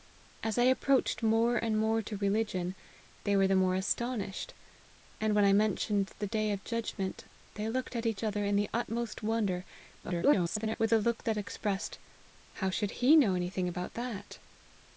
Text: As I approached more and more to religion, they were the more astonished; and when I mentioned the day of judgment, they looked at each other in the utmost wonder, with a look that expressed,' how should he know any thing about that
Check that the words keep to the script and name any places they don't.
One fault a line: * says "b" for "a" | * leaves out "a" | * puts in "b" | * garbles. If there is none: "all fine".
* garbles